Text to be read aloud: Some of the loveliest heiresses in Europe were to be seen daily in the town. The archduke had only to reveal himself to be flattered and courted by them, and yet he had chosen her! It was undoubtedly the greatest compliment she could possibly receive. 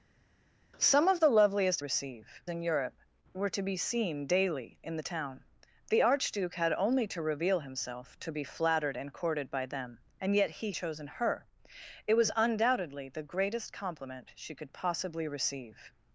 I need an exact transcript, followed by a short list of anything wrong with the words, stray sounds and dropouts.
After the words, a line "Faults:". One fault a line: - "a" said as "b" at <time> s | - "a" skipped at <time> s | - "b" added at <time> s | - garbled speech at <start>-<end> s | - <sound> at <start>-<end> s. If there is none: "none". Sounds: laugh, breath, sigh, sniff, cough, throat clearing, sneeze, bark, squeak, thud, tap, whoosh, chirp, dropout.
Some of the loveliest receive in Europe were to be seen daily in the town. The archduke had only to reveal himself to be flattered and courted by them, and yet he chosen her! It was undoubtedly the greatest compliment she could possibly receive.
Faults:
- "heiresses" said as "receive" at 1.8 s
- "had" skipped at 10.7 s